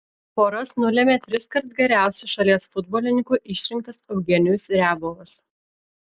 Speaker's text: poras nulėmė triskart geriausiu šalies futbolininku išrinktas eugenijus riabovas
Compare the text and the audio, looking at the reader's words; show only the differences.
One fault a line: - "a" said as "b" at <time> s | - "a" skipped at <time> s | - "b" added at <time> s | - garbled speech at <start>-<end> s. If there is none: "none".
none